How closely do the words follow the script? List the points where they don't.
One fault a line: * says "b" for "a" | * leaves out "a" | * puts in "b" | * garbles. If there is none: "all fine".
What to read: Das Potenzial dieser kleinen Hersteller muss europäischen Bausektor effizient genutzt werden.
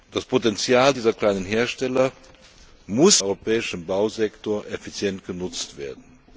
all fine